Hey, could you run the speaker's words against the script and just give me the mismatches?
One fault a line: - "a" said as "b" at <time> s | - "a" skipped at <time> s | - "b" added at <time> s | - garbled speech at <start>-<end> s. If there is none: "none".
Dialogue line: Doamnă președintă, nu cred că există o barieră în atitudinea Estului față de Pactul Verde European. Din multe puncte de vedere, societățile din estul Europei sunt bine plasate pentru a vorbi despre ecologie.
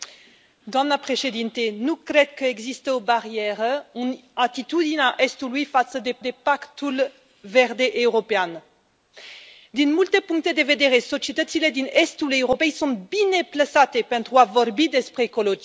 - "de" added at 6.2 s